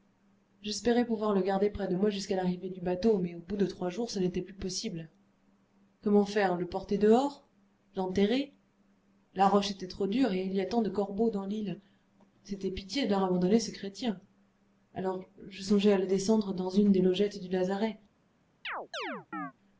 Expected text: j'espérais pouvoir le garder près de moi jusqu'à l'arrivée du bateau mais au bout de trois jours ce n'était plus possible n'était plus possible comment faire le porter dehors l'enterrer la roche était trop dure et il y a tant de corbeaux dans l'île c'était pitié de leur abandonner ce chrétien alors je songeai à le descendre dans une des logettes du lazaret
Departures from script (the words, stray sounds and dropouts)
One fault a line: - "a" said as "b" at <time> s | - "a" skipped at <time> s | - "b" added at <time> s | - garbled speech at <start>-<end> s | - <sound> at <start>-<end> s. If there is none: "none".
- "n'était plus possible" skipped at 5.1 s
- chirp at 18.6-19.5 s